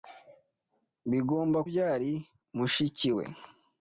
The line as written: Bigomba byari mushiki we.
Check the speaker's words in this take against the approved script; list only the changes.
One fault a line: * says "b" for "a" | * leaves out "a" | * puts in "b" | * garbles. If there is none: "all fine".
all fine